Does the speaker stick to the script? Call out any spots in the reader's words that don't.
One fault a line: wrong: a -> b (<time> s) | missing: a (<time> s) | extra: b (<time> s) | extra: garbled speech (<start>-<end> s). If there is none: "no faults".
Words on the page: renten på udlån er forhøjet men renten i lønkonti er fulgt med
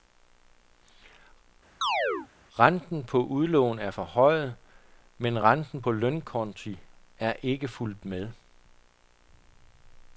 wrong: i -> på (5.8 s)
extra: ikke (7.4 s)